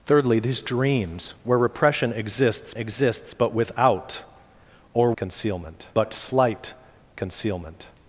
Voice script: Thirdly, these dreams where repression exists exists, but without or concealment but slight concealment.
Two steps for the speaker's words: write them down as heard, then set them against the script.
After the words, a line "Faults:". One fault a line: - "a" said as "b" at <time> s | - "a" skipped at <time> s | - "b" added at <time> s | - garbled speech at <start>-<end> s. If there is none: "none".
Thirdly, these dreams where repression exists exists, but without or concealment but slight concealment.
Faults:
none